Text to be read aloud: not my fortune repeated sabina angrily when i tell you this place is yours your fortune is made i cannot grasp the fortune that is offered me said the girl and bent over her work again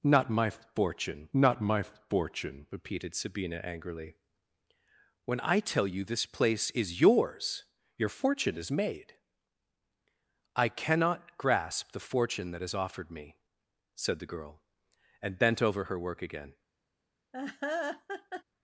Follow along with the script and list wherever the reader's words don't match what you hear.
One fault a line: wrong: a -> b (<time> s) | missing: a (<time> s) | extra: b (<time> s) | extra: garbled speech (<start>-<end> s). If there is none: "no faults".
extra: not my fortune (1.3 s)